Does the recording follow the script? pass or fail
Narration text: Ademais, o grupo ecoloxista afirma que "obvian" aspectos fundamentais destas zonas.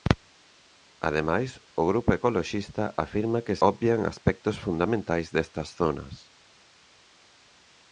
pass